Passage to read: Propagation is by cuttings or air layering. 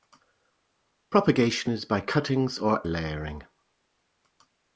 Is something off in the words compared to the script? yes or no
yes